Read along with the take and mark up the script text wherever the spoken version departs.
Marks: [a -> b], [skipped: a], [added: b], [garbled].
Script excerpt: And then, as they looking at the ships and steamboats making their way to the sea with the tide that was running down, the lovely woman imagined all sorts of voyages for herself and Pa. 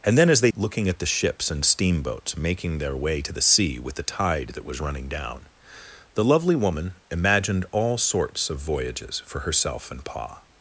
And then, as they looking at the ships and steamboats making their way to the sea with the tide that was running down, the lovely woman imagined all sorts of voyages for herself and Pa.